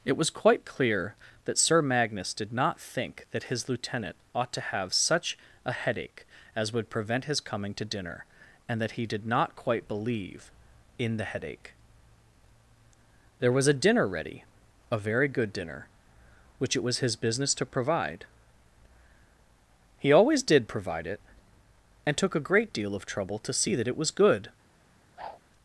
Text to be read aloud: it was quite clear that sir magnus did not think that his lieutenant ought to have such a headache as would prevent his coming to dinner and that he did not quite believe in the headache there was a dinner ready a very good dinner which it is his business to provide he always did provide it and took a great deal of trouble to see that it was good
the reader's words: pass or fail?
fail